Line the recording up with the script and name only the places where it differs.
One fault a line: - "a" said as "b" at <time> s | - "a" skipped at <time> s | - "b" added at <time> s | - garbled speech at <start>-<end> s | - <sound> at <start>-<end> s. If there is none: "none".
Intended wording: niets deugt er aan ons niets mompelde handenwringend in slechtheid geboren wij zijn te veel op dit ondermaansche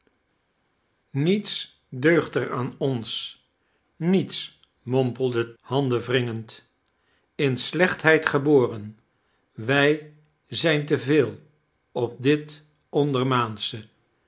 none